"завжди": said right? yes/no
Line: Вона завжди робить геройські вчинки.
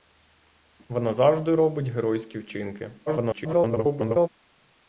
yes